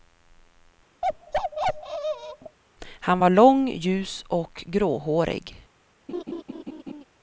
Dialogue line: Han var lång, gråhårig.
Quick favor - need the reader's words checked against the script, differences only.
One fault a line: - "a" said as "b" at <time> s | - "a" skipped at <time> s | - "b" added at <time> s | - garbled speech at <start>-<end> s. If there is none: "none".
- "ljus och" added at 3.7 s